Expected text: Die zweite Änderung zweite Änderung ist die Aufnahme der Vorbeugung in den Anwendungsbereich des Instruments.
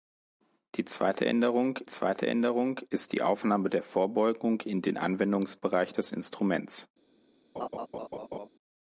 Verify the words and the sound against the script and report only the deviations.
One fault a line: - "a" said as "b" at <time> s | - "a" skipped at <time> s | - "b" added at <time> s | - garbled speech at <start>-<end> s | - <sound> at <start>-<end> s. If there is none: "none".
- laugh at 7.6-8.5 s